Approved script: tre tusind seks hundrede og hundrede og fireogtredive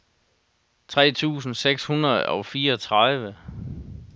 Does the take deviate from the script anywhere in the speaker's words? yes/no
yes